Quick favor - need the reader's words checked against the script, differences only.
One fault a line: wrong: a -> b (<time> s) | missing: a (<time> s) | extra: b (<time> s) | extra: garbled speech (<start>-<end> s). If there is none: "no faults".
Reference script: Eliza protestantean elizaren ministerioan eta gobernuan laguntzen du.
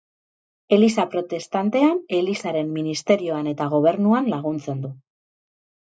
no faults